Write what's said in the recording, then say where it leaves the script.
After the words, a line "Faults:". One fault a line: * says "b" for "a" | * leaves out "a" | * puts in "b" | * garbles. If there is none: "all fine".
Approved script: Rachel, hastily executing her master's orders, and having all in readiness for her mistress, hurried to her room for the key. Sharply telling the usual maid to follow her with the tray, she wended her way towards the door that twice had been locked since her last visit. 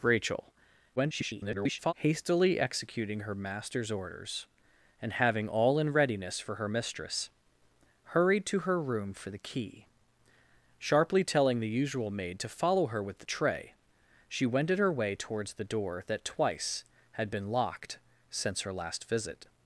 Rachel, [garbled] hastily executing her master's orders, and having all in readiness for her mistress, hurried to her room for the key. Sharply telling the usual maid to follow her with the tray, she wended her way towards the door that twice had been locked since her last visit.
Faults:
* garbles